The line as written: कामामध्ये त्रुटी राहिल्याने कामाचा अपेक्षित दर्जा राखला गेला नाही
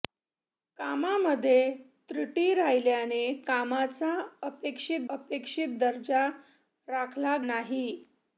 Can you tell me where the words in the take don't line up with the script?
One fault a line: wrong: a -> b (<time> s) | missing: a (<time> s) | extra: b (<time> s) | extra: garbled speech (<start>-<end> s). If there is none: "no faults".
extra: अपेक्षित (5.1 s)
missing: गेला (7.4 s)